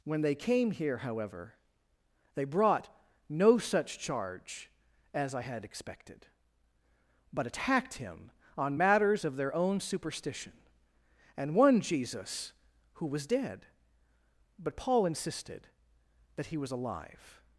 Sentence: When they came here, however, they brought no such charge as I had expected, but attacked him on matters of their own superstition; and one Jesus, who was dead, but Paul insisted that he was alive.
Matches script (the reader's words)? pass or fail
pass